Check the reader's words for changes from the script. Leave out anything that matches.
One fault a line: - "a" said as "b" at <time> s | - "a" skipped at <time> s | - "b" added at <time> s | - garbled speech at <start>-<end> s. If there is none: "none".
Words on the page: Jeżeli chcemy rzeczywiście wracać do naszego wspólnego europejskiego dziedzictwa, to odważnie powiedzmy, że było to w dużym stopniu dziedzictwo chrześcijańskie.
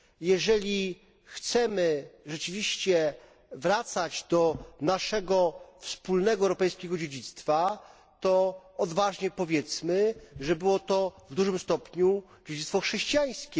none